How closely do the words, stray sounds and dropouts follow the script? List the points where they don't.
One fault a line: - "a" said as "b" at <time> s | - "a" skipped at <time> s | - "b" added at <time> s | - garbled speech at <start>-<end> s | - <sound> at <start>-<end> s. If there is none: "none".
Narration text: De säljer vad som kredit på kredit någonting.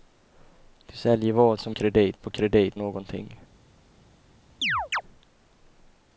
- chirp at 4.6-5.0 s